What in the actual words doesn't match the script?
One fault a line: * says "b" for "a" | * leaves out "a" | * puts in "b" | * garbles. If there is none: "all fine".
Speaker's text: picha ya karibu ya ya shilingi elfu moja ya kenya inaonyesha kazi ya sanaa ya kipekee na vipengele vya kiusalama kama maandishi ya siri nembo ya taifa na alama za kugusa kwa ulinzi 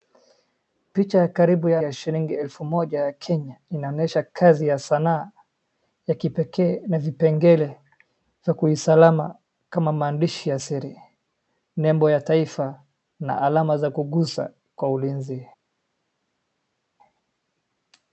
all fine